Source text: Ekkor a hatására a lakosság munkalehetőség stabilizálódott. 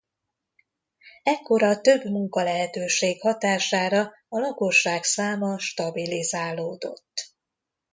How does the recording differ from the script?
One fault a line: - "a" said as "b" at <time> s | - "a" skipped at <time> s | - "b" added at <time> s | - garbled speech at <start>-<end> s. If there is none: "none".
- "több munkalehetőség" added at 1.8 s
- "munkalehetőség" said as "száma" at 5.0 s